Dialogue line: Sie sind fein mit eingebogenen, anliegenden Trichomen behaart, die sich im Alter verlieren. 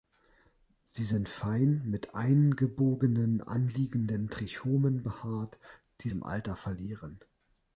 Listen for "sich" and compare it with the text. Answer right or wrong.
wrong